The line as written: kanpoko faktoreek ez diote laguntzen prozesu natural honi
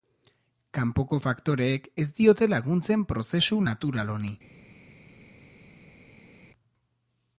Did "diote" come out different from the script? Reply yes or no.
no